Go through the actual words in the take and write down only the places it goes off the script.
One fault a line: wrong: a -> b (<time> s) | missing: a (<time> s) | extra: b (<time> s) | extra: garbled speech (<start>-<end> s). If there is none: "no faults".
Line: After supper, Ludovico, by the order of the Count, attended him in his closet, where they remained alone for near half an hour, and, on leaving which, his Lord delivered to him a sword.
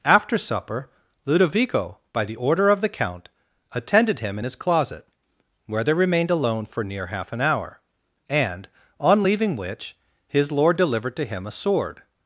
no faults